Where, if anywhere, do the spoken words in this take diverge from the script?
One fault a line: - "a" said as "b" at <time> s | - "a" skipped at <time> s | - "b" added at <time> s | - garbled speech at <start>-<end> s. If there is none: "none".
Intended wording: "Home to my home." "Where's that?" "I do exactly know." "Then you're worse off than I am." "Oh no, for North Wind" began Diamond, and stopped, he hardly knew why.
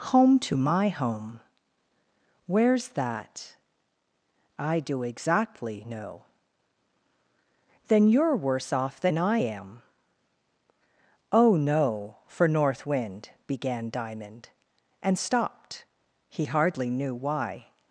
none